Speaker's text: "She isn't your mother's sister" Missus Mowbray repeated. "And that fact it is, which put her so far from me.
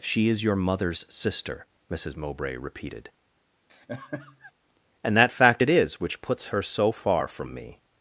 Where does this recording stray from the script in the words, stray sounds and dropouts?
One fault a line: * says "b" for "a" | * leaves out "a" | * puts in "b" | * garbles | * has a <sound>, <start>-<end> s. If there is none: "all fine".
* says "is" for "isn't"
* has a laugh, 3.7-4.5 s
* says "puts" for "put"